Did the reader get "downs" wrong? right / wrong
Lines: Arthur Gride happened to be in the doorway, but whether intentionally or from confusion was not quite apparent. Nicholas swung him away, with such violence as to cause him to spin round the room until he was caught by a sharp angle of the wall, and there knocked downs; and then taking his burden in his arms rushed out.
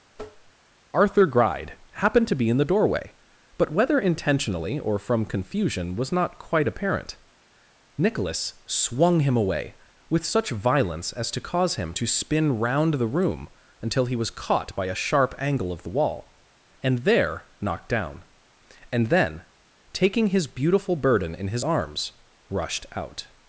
wrong